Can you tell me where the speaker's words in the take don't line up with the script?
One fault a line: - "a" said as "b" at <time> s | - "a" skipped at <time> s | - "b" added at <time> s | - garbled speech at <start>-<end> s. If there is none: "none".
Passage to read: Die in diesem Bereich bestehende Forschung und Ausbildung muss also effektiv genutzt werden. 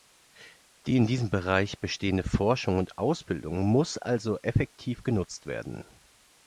none